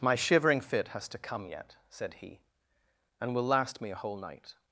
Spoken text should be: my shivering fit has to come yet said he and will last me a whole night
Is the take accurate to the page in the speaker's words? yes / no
yes